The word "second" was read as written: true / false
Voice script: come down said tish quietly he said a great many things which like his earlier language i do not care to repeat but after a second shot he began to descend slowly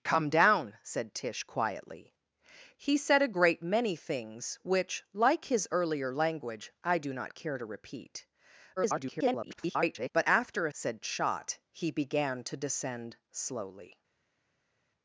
false